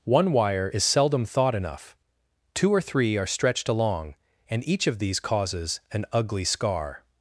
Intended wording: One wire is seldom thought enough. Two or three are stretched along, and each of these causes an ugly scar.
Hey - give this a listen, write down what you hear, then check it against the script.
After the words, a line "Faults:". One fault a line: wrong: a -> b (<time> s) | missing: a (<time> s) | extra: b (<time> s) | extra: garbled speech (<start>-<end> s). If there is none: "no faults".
One wire is seldom thought enough. Two or three are stretched along, and each of these causes an ugly scar.
Faults:
no faults